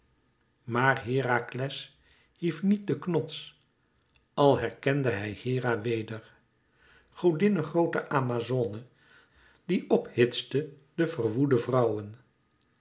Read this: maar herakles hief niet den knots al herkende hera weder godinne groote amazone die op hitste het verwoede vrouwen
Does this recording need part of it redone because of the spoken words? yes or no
yes